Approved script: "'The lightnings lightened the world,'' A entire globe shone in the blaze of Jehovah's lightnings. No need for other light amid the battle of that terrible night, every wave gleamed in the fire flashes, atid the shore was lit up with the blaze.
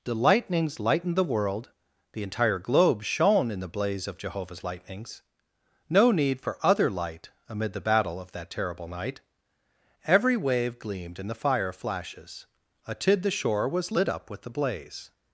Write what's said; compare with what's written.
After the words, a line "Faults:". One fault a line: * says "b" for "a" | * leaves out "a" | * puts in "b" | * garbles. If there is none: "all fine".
"'The lightnings lightened the world,'' The entire globe shone in the blaze of Jehovah's lightnings. No need for other light amid the battle of that terrible night, every wave gleamed in the fire flashes, atid the shore was lit up with the blaze.
Faults:
* says "The" for "A"